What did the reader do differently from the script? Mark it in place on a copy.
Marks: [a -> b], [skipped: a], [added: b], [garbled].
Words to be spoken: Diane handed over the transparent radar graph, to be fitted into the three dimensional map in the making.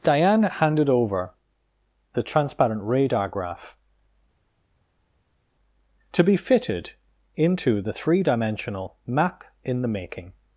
Diane handed over the transparent radar graph, to be fitted into the three dimensional map in the making.